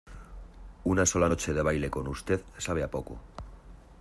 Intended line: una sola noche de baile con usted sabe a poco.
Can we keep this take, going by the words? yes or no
yes